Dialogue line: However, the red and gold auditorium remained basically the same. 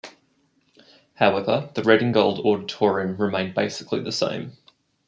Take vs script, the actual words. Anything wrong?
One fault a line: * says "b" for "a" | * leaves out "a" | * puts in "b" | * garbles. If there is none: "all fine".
all fine